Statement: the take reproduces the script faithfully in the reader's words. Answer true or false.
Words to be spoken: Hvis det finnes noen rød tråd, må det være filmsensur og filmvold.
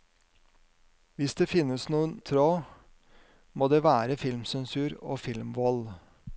false